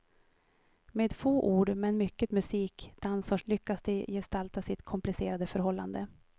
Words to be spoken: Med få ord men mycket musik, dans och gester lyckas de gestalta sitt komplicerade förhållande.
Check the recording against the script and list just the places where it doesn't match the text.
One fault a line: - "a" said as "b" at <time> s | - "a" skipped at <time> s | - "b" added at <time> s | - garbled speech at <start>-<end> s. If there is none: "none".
- "gester" skipped at 3.4 s